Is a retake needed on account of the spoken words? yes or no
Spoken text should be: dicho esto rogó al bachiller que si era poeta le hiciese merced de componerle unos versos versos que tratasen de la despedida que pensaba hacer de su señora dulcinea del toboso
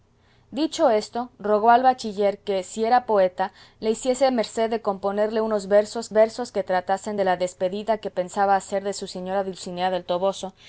no